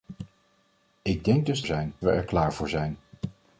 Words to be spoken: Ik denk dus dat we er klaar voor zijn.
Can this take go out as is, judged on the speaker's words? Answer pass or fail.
fail